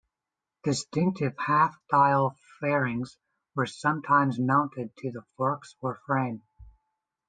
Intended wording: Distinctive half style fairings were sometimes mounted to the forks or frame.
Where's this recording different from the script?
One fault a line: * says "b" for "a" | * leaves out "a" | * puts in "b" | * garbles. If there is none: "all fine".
all fine